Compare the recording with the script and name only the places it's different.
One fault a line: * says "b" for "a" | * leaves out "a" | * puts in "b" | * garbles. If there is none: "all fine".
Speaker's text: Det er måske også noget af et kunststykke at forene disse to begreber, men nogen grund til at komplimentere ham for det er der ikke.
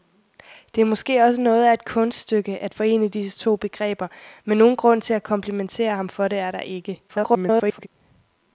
* garbles